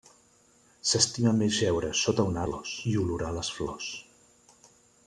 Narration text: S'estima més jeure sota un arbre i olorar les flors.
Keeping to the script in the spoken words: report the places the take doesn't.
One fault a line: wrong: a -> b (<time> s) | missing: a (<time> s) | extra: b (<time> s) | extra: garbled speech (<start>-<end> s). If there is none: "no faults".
wrong: arbre -> flors (2.4 s)